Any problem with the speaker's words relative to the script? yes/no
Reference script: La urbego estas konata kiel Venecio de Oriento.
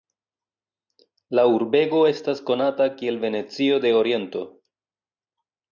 no